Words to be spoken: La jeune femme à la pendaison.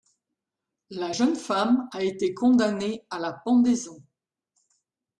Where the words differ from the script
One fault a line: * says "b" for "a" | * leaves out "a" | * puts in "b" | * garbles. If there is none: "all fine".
* puts in "a été condamnée"